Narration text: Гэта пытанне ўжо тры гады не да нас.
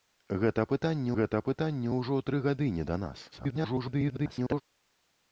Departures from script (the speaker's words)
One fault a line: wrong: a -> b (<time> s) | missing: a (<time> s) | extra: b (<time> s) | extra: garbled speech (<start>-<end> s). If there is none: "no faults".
extra: гэта пытанне (1.2 s)
extra: garbled speech (3.3-4.6 s)